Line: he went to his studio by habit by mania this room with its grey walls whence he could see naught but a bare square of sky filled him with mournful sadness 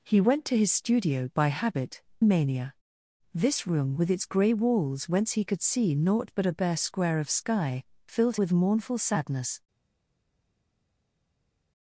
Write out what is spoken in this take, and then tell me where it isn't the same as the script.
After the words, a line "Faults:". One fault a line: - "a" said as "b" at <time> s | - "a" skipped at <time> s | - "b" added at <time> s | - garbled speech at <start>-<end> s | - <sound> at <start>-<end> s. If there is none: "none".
he went to his studio by habit mania this room with its grey walls whence he could see naught but a bare square of sky filled with mournful sadness
Faults:
- "by" skipped at 2.0 s
- "him" skipped at 8.4 s